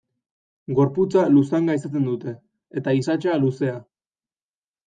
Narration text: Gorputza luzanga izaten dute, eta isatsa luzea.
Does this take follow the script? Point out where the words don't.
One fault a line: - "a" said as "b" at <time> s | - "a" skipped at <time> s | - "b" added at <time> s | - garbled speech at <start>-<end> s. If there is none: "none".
none